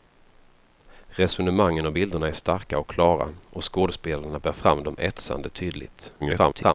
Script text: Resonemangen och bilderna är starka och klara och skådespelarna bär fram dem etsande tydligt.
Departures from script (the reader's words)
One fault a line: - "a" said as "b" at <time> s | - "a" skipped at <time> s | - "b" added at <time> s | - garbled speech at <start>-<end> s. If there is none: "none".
- garbled speech at 6.2-6.7 s